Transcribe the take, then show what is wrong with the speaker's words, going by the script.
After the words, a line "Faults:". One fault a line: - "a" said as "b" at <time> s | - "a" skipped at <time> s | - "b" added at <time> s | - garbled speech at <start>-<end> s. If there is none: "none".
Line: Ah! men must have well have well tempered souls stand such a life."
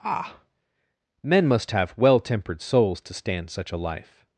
Ah! men must have well tempered souls to stand such a life."
Faults:
- "have well" skipped at 2.2 s
- "to" added at 3.0 s